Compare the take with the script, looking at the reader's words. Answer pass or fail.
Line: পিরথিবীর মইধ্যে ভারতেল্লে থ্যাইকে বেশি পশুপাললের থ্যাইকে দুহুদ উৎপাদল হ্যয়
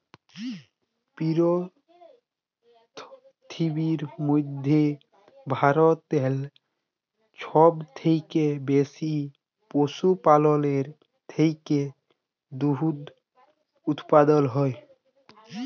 fail